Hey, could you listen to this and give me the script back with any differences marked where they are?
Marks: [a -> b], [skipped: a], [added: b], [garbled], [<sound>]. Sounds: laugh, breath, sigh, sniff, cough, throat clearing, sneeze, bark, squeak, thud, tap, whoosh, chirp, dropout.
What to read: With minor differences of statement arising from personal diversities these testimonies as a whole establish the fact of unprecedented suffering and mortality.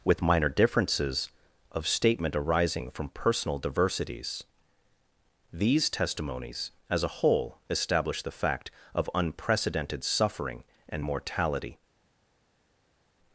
With minor differences of statement arising from personal diversities these testimonies as a whole establish the fact of unprecedented suffering and mortality.